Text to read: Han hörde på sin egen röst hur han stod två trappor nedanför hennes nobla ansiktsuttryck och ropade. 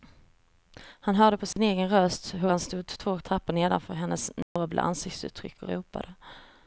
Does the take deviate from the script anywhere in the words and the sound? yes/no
yes